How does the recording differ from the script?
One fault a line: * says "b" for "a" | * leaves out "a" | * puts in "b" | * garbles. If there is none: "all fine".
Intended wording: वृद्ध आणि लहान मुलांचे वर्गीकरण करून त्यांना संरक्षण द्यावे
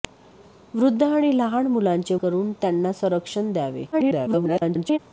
* leaves out "वर्गीकरण"
* garbles